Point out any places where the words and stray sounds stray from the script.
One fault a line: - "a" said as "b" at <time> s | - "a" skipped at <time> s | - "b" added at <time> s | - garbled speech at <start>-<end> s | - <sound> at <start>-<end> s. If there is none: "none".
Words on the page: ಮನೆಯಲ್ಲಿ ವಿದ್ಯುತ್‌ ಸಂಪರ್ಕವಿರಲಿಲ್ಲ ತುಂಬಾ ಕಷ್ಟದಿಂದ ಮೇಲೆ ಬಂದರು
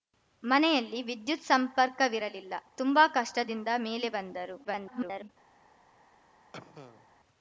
- garbled speech at 4.6-5.3 s
- cough at 6.5-7.1 s